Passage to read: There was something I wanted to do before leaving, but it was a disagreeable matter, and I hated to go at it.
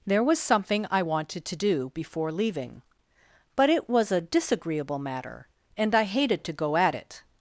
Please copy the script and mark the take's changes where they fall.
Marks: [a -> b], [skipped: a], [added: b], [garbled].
There was something I wanted to do before leaving, but it was a disagreeable matter, and I hated to go at it.